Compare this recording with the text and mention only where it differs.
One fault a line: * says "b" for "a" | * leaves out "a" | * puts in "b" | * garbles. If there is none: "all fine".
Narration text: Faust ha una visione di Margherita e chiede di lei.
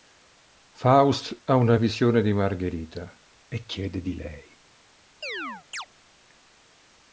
all fine